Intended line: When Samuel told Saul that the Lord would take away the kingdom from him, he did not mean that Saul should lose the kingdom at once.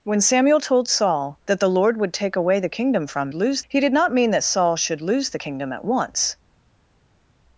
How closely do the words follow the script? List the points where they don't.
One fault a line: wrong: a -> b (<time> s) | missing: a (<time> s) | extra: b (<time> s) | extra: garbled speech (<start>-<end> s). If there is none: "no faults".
wrong: him -> lose (3.3 s)